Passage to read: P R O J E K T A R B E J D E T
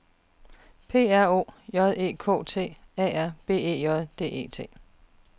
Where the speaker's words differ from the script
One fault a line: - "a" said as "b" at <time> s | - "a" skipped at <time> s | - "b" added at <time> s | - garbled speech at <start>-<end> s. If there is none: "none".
none